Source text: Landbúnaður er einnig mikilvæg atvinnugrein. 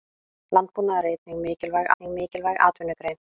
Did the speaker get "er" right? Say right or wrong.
right